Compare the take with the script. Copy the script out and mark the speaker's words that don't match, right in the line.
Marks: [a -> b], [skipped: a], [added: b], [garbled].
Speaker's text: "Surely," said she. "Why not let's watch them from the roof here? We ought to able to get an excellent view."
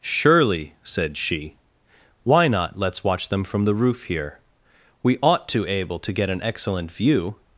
"Surely," said she. "Why not let's watch them from the roof here? We ought to able to get an excellent view."